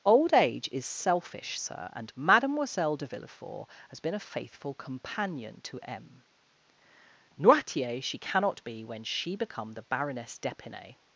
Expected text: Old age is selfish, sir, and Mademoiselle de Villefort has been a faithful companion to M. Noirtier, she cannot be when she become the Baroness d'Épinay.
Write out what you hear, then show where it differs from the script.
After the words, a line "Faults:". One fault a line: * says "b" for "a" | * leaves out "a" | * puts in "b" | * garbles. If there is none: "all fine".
Old age is selfish, sir, and Mademoiselle de Villefort has been a faithful companion to M. Noirtier, she cannot be when she become the Baroness d'Épinay.
Faults:
all fine